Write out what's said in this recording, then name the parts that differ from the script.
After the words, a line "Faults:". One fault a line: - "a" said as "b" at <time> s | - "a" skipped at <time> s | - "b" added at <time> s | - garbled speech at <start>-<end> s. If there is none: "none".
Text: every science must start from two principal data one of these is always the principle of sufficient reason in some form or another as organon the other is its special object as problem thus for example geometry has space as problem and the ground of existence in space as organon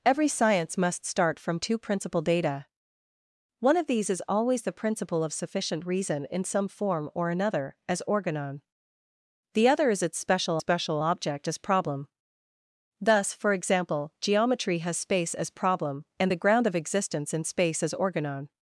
every science must start from two principal data one of these is always the principle of sufficient reason in some form or another as organon the other is its special special object as problem thus for example geometry has space as problem and the ground of existence in space as organon
Faults:
- "special" added at 10.6 s